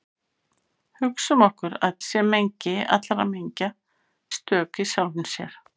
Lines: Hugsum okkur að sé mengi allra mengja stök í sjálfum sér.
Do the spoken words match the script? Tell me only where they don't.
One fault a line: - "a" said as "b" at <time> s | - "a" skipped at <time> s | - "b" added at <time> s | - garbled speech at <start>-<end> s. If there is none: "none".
none